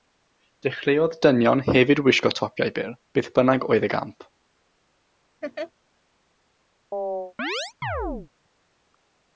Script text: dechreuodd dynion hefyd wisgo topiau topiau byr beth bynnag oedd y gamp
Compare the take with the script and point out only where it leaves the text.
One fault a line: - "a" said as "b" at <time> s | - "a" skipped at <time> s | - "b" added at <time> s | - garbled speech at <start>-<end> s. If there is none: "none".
- "topiau" skipped at 2.7 s